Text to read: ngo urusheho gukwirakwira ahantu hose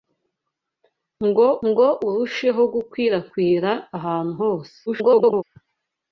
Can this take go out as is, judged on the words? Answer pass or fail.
fail